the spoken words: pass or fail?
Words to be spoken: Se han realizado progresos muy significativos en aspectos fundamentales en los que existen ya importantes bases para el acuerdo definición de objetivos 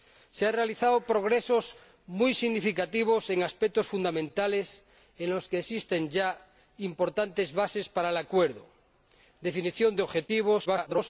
fail